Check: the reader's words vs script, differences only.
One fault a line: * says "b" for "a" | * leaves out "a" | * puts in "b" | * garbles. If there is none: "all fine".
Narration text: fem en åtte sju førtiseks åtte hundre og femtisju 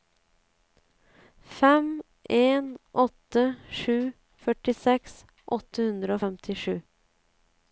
all fine